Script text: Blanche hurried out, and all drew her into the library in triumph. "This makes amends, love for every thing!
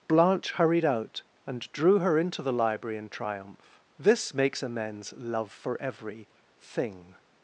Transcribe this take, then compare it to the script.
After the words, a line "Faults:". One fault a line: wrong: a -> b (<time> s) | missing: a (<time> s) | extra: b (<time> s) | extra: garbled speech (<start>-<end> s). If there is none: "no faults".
Blanche hurried out, and drew her into the library in triumph. "This makes amends, love for every thing!
Faults:
missing: all (1.7 s)